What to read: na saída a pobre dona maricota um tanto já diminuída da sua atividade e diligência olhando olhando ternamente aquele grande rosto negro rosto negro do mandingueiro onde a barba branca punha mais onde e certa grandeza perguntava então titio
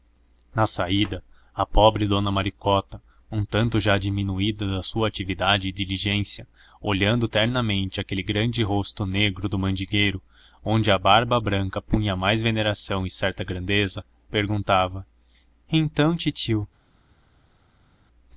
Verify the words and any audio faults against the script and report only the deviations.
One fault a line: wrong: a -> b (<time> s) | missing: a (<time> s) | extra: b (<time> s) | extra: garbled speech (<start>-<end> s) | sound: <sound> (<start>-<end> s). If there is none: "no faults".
missing: olhando (7.3 s)
missing: rosto negro (9.5 s)
wrong: onde -> veneração (12.4 s)